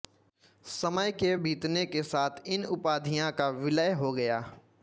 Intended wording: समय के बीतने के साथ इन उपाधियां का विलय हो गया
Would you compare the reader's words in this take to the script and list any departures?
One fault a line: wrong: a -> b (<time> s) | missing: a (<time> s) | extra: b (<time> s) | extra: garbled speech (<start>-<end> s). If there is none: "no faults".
no faults